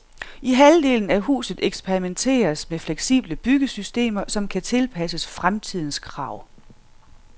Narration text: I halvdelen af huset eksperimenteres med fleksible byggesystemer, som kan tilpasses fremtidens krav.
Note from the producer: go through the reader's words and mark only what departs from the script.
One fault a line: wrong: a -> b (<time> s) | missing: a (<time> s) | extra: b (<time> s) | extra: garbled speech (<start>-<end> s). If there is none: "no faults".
no faults